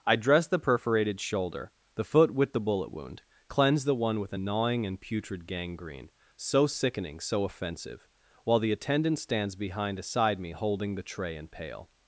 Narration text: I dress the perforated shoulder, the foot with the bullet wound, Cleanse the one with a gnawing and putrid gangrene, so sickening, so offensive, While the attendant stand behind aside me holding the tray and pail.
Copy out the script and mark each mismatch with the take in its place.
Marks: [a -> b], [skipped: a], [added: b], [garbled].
I dress the perforated shoulder, the foot with the bullet wound, Cleanse the one with a gnawing and putrid gangrene, so sickening, so offensive, While the attendant [stand -> stands] behind aside me holding the tray and pail.